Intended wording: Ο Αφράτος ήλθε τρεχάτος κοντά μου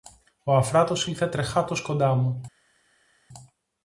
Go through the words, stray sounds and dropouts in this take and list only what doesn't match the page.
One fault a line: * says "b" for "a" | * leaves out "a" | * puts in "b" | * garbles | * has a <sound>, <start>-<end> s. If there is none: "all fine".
all fine